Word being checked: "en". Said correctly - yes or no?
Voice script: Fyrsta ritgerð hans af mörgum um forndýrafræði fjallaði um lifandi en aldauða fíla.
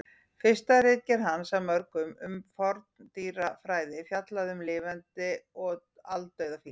no